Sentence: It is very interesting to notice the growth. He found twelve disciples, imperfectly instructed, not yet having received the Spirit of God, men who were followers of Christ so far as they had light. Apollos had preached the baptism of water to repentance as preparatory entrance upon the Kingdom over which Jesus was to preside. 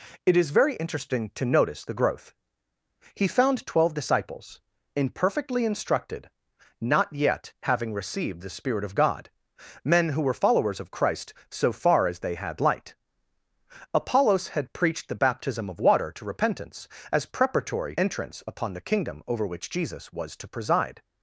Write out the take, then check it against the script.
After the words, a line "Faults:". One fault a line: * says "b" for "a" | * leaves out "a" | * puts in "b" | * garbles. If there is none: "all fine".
It is very interesting to notice the growth. He found twelve disciples, imperfectly instructed, not yet having received the Spirit of God, men who were followers of Christ so far as they had light. Apollos had preached the baptism of water to repentance as preparatory entrance upon the Kingdom over which Jesus was to preside.
Faults:
all fine